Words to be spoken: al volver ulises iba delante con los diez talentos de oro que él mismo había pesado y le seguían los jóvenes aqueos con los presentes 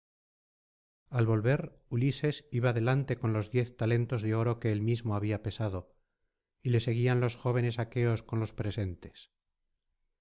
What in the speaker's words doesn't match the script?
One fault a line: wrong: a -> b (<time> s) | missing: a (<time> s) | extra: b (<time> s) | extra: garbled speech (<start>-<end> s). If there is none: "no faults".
no faults